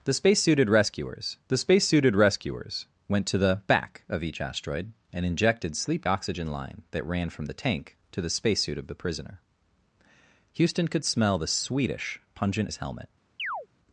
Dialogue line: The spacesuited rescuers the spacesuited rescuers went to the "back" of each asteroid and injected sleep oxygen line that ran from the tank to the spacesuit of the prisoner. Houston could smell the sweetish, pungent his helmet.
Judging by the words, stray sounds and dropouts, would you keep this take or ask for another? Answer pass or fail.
fail